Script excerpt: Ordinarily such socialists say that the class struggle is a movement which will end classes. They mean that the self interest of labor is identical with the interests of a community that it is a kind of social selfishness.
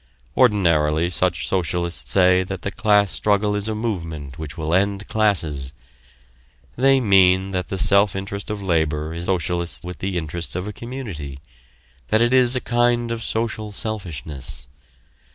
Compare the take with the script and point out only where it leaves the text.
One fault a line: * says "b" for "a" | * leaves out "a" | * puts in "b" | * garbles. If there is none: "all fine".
* says "socialists" for "identical"